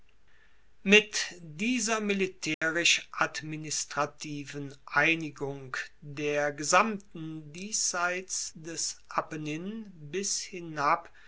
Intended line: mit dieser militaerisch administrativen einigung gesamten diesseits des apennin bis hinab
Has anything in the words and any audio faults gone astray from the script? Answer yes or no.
yes